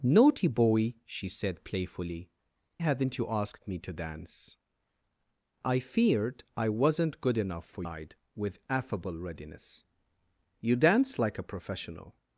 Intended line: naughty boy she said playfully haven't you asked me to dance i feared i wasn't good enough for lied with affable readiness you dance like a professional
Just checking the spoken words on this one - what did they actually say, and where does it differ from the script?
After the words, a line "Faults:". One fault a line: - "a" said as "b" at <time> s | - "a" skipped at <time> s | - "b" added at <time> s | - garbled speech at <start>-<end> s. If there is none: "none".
naughty boy she said playfully haven't you asked me to dance i feared i wasn't good enough for lied with affable readiness you dance like a professional
Faults:
none